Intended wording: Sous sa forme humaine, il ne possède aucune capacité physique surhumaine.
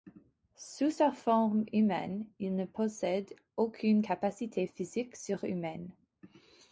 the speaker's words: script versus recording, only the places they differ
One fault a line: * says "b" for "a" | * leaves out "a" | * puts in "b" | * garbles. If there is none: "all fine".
all fine